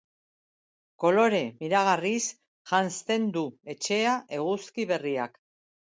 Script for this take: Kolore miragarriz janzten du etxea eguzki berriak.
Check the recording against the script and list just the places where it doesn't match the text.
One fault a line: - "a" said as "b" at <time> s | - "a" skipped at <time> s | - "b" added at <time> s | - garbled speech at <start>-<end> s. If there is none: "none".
none